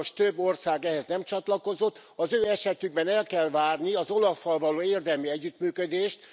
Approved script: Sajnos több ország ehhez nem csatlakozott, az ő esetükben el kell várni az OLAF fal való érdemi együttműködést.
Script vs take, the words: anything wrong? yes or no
no